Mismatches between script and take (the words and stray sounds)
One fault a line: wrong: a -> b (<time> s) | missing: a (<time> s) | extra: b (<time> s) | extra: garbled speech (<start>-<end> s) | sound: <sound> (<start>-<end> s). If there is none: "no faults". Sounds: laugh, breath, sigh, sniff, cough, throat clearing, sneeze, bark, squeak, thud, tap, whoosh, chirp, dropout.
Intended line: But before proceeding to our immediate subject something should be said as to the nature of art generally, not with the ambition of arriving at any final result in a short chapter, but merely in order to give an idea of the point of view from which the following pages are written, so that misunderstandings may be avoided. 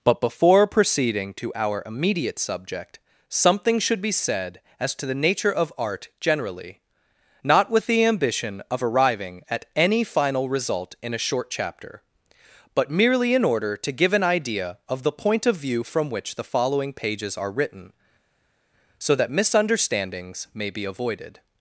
no faults